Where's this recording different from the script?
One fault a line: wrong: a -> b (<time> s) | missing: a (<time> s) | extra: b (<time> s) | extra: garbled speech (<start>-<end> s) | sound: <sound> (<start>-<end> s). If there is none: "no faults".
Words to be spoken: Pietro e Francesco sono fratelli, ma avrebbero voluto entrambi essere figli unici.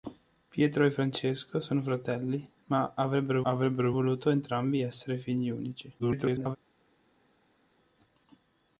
extra: avrebbero (3.4 s)
extra: garbled speech (6.0-6.6 s)